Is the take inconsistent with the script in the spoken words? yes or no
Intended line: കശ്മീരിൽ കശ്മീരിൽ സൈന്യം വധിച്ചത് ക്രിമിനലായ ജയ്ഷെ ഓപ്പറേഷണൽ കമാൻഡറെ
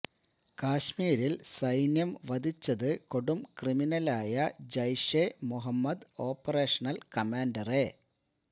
yes